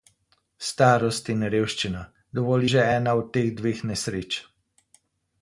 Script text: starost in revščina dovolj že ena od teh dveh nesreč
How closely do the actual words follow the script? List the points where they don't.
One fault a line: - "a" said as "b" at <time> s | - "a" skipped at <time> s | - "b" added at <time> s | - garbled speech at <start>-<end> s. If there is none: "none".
none